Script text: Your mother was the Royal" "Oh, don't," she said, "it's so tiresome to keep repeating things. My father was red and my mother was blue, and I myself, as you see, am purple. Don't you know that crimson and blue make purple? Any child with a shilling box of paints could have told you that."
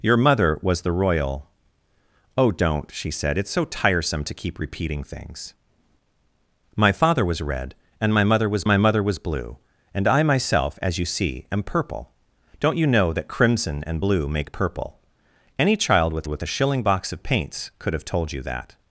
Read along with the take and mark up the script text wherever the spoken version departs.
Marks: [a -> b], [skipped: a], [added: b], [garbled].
Your mother was the Royal" "Oh, don't," she said, "it's so tiresome to keep repeating things. My father was red and my mother was [added: my mother was] blue, and I myself, as you see, am purple. Don't you know that crimson and blue make purple? Any child with [added: with] a shilling box of paints could have told you that."